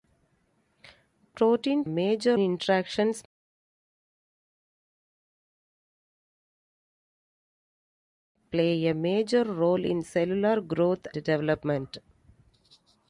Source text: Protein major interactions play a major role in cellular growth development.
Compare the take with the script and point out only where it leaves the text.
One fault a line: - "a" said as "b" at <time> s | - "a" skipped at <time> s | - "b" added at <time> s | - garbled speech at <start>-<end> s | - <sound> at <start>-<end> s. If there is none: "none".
none